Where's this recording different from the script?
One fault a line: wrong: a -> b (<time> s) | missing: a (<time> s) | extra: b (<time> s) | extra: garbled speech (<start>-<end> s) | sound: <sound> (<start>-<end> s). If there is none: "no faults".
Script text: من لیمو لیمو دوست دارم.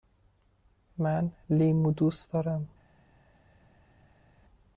missing: لیمو (1.9 s)